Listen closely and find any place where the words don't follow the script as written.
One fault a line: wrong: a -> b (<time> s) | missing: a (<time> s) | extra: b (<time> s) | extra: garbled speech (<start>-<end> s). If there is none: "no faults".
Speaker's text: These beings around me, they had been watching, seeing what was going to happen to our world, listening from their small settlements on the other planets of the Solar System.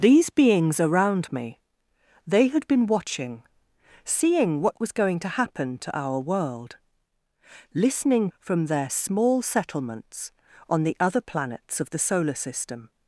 no faults